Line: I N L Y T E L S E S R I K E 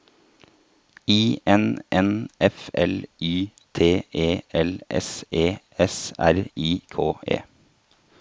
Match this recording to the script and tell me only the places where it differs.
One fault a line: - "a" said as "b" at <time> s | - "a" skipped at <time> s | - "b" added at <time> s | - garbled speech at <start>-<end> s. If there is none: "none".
- "N F" added at 1.9 s